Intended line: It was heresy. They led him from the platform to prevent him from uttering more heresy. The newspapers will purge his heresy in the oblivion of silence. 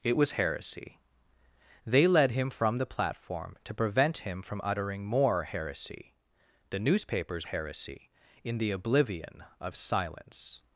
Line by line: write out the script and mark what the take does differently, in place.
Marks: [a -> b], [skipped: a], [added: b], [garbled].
It was heresy. They led him from the platform to prevent him from uttering more heresy. The newspapers [skipped: will purge his] heresy in the oblivion of silence.